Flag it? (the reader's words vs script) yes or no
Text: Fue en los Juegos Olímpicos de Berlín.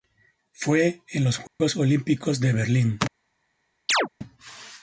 no